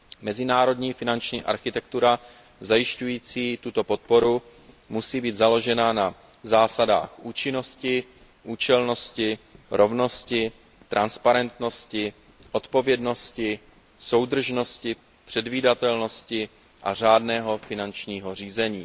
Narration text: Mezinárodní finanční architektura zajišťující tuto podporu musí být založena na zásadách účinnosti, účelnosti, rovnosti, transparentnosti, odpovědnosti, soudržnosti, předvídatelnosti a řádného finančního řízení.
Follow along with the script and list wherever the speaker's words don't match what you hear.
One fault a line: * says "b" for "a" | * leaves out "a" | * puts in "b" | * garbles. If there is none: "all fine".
all fine